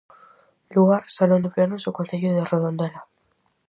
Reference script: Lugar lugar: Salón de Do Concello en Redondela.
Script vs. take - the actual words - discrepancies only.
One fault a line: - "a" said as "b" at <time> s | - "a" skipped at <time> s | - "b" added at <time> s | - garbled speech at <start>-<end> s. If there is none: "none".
- "lugar" skipped at 1.0 s
- "Plenos" added at 1.5 s
- "en" said as "de" at 2.4 s